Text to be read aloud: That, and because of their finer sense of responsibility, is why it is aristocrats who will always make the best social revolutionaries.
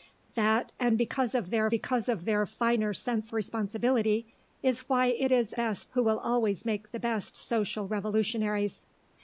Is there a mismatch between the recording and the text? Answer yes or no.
yes